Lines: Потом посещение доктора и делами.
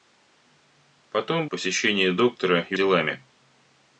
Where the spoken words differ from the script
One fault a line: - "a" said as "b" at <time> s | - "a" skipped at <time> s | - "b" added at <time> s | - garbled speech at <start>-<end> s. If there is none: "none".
none